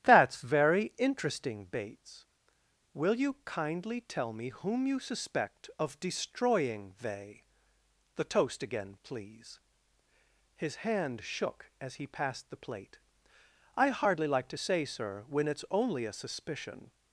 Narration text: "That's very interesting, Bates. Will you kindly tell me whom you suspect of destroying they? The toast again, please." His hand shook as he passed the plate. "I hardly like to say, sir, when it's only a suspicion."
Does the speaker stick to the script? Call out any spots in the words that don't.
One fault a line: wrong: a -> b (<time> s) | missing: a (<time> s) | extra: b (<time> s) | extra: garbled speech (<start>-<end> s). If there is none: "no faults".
no faults